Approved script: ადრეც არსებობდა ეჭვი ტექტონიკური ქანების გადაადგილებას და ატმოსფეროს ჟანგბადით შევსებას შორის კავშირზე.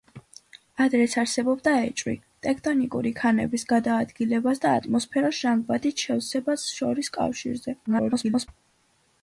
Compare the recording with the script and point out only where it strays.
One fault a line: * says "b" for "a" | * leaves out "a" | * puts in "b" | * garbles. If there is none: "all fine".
* garbles